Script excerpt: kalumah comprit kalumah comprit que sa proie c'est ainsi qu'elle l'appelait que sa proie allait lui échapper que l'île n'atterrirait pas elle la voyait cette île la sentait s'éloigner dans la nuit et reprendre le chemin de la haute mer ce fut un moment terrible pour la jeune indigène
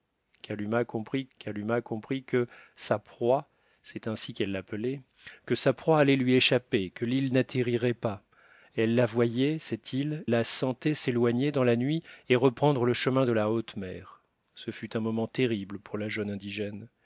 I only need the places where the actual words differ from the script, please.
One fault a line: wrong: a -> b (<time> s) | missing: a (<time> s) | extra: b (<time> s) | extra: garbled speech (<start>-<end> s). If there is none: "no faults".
no faults